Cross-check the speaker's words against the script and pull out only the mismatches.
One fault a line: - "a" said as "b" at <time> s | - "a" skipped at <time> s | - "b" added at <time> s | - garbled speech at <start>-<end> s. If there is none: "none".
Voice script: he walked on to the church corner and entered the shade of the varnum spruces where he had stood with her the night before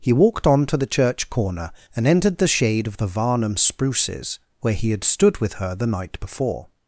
none